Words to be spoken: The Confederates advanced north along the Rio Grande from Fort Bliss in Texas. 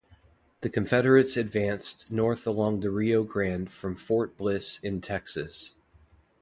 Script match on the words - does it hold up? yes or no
yes